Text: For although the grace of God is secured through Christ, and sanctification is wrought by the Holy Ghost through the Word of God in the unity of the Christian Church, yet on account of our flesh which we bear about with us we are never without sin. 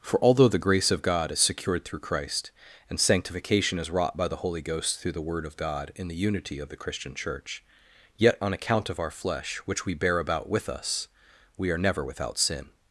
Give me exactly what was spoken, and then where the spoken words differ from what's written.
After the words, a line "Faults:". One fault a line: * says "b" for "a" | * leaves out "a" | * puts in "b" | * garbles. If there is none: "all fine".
For although the grace of God is secured through Christ, and sanctification is wrought by the Holy Ghost through the Word of God in the unity of the Christian Church, yet on account of our flesh which we bear about with us we are never without sin.
Faults:
all fine